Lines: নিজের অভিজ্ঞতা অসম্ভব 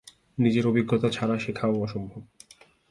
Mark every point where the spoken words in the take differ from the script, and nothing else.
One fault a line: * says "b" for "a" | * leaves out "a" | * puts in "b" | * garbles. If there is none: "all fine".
* puts in "ছাড়া শেখাও"